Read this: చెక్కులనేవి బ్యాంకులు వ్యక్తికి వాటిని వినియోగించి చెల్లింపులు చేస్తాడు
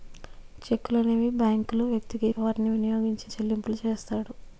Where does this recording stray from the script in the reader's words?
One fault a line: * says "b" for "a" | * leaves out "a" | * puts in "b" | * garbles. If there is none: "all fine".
all fine